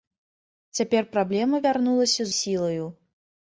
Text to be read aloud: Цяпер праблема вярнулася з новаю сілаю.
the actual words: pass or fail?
fail